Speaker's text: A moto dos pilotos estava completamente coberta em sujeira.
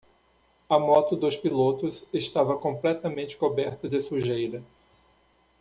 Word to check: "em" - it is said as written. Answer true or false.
false